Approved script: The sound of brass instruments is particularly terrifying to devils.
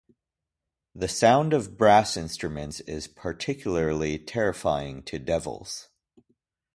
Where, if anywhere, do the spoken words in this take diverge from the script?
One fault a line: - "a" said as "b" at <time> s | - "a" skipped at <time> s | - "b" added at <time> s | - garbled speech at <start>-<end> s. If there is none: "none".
none